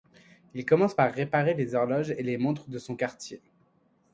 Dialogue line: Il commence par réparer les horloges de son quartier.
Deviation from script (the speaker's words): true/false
true